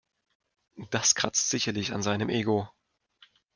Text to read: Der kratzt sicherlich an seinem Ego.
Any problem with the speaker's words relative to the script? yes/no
yes